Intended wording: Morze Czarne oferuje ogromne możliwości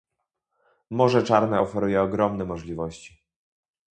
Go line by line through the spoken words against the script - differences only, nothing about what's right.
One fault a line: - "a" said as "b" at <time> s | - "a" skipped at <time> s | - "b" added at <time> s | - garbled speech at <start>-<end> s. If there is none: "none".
none